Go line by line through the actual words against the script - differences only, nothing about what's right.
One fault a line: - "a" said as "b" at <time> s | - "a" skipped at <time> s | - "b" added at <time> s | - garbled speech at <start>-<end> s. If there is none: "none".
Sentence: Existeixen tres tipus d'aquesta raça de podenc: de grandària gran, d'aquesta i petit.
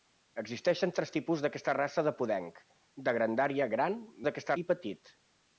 none